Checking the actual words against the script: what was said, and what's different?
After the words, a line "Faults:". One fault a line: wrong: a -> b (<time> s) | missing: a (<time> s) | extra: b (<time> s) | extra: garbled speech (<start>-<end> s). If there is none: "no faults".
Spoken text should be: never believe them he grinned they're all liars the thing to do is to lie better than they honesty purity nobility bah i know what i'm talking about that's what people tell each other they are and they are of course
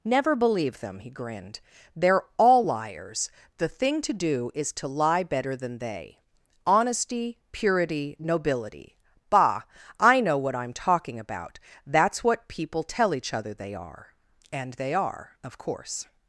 never believe them he grinned they're all liars the thing to do is to lie better than they honesty purity nobility bah i know what i'm talking about that's what people tell each other they are and they are of course
Faults:
no faults